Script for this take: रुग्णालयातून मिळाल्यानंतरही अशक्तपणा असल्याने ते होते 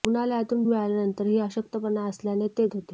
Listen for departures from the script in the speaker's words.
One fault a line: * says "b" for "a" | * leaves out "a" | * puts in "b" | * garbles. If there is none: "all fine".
all fine